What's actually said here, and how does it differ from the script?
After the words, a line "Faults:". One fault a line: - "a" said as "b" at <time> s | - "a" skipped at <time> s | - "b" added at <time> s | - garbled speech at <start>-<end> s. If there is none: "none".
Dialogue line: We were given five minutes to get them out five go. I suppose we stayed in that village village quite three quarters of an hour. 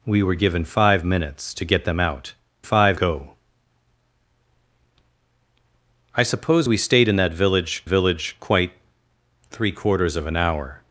We were given five minutes to get them out five go. I suppose we stayed in that village village quite three quarters of an hour.
Faults:
none